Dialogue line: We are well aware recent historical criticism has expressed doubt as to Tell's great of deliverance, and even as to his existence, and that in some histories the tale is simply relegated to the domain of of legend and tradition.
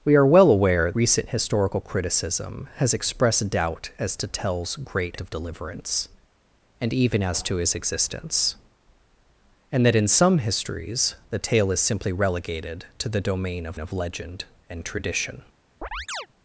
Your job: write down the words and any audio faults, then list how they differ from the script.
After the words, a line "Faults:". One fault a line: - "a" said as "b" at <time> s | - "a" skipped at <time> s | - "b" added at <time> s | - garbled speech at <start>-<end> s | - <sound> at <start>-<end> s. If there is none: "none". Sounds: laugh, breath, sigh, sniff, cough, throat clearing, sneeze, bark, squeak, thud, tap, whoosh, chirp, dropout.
We are well aware recent historical criticism has expressed doubt as to Tell's great of deliverance, and even as to his existence, and that in some histories the tale is simply relegated to the domain of of legend and tradition.
Faults:
- chirp at 15.8-16.3 s